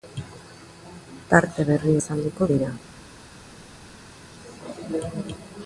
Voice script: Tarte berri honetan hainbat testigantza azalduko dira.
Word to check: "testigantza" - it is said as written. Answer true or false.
false